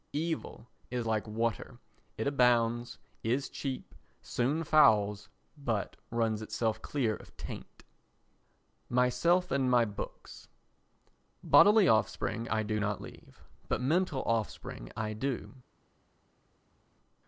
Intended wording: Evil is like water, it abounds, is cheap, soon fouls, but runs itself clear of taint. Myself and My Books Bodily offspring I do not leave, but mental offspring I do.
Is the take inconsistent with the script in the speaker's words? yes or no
no